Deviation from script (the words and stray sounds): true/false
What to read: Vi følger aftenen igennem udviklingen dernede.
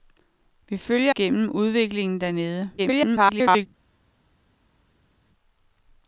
true